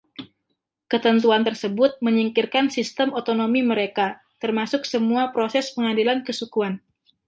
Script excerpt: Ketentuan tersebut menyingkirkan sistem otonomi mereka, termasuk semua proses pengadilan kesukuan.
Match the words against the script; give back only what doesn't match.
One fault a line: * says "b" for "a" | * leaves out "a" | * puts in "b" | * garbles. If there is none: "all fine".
all fine